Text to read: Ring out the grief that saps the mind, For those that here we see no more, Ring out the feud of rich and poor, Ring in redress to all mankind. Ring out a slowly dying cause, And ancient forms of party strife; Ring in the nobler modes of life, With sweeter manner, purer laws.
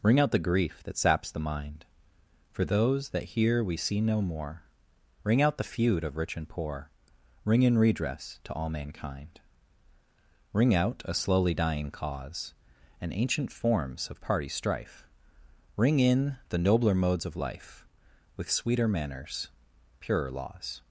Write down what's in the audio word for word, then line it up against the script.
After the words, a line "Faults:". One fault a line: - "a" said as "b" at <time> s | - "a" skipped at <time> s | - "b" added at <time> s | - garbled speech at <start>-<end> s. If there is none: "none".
Ring out the grief that saps the mind, For those that here we see no more, Ring out the feud of rich and poor, Ring in redress to all mankind. Ring out a slowly dying cause, And ancient forms of party strife; Ring in the nobler modes of life, With sweeter manners, purer laws.
Faults:
- "manner" said as "manners" at 18.9 s